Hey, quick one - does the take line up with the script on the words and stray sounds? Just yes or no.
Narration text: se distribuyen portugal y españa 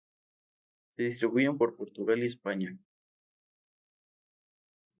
no